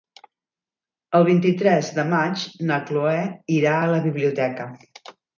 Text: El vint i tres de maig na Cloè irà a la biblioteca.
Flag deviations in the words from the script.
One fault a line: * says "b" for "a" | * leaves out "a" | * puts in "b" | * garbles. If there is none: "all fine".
all fine